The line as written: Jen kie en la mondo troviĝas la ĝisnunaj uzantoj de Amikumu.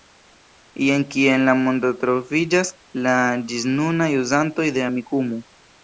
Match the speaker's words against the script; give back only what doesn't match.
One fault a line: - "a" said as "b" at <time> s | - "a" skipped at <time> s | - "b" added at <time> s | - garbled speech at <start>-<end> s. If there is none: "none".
none